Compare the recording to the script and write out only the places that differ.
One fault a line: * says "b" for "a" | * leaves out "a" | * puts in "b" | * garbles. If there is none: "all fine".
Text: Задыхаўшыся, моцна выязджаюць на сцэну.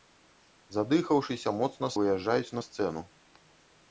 all fine